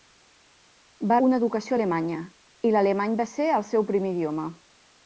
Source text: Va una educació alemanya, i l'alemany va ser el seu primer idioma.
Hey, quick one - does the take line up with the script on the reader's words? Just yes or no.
yes